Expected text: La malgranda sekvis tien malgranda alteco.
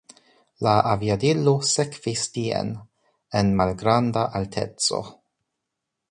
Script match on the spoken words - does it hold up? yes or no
no